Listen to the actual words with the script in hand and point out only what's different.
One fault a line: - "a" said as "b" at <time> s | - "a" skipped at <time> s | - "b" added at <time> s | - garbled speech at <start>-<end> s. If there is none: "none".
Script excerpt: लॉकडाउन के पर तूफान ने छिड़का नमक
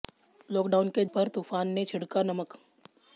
none